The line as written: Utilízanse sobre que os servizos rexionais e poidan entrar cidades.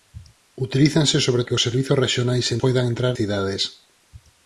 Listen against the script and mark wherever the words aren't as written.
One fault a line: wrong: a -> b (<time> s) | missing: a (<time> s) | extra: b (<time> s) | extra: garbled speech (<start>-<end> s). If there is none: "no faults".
no faults